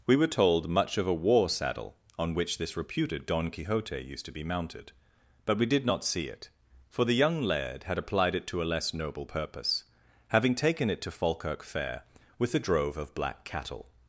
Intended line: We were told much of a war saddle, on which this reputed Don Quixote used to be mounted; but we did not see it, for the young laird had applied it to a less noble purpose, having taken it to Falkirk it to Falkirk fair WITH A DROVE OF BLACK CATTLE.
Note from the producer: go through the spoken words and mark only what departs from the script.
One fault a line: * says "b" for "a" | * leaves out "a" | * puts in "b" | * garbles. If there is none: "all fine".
* leaves out "it to Falkirk"